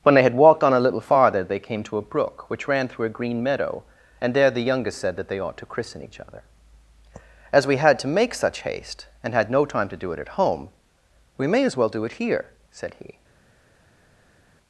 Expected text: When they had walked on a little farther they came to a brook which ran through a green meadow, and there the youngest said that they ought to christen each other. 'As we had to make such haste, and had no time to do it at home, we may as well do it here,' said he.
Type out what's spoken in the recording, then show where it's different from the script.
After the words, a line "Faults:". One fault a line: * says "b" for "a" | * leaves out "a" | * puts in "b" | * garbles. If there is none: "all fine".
When they had walked on a little farther they came to a brook which ran through a green meadow, and there the youngest said that they ought to christen each other. 'As we had to make such haste, and had no time to do it at home, we may as well do it here,' said he.
Faults:
all fine